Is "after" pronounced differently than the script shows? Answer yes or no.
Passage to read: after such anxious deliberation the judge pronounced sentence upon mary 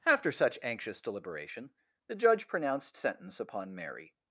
no